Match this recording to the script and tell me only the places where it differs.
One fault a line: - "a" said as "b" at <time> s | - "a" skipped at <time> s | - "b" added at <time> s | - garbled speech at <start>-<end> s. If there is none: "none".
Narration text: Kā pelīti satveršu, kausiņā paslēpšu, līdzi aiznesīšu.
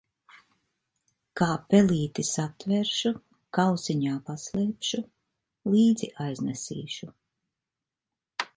none